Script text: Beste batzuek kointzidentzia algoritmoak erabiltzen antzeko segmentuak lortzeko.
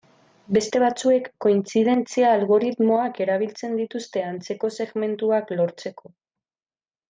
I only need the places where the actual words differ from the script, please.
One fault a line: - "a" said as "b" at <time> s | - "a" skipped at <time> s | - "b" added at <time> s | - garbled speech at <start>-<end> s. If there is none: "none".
- "dituzte" added at 3.8 s